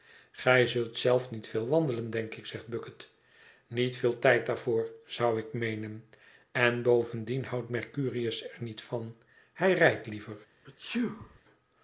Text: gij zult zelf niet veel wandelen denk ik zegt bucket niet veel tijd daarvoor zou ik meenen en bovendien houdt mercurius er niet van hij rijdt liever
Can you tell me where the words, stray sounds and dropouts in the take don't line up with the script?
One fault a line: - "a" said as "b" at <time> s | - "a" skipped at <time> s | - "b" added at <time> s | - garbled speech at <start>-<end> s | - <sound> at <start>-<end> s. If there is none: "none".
- sneeze at 10.6-11.4 s